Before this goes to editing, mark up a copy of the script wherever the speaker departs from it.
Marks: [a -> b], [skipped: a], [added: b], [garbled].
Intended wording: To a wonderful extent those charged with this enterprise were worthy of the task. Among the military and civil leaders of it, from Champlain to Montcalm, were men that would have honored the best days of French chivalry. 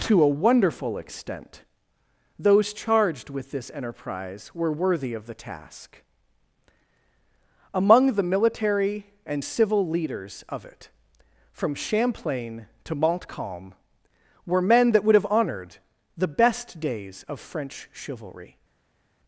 To a wonderful extent those charged with this enterprise were worthy of the task. Among the military and civil leaders of it, from Champlain to Montcalm, were men that would have honored the best days of French chivalry.